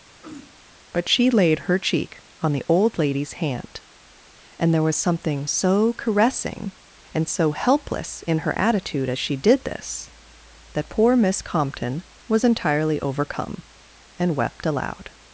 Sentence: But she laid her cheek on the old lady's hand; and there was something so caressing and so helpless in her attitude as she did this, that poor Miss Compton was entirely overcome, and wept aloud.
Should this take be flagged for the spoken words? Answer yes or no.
no